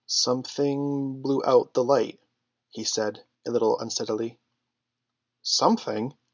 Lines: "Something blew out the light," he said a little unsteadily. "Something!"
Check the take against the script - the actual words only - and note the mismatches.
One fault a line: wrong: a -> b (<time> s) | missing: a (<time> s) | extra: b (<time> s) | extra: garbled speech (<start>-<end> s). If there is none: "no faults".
no faults